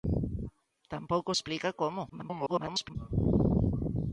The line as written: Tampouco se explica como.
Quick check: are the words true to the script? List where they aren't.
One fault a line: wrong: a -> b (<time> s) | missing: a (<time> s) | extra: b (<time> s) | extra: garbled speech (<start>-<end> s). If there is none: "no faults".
missing: se (1.3 s)
extra: garbled speech (2.1-3.0 s)